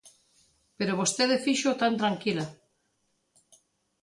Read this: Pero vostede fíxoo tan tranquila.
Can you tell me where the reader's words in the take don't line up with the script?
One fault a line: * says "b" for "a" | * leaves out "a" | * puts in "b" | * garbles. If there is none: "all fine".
all fine